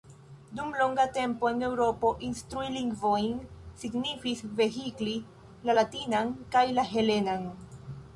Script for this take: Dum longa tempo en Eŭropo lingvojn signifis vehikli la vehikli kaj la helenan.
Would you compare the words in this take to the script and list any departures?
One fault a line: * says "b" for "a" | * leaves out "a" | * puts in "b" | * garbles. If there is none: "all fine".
* puts in "instrui"
* says "latinan" for "vehikli"